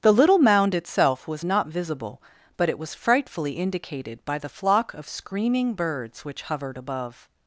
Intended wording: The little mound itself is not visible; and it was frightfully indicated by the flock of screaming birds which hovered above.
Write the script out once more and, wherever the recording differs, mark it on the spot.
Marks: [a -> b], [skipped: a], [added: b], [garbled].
The little mound itself [is -> was] not visible; [and -> but] it was frightfully indicated by the flock of screaming birds which hovered above.